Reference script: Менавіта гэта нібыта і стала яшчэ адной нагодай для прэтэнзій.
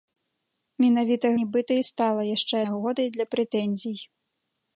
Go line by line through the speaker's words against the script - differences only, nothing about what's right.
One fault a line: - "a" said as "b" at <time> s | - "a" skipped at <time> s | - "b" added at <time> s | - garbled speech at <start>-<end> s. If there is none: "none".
- "гэта" skipped at 1.3 s
- "адной" skipped at 2.6 s